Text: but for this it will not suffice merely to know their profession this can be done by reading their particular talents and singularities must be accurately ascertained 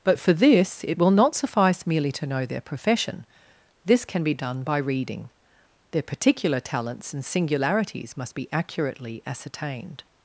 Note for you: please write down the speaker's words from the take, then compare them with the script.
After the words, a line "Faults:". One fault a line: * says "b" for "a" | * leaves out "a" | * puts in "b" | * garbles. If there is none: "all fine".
but for this it will not suffice merely to know their profession this can be done by reading their particular talents and singularities must be accurately ascertained
Faults:
all fine